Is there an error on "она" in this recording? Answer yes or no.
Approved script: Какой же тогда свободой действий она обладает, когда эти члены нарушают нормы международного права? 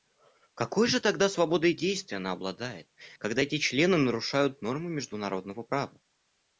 no